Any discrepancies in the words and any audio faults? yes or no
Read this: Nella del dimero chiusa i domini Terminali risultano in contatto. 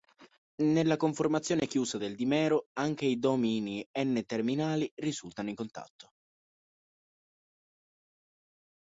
yes